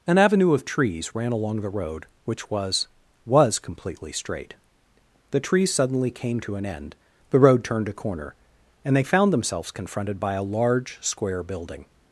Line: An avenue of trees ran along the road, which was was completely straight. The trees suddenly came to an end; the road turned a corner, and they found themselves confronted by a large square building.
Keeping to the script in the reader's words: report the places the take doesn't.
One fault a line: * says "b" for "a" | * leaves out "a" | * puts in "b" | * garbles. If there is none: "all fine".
all fine